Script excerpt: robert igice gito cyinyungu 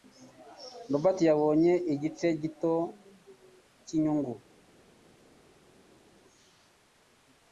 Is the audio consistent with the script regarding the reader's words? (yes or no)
no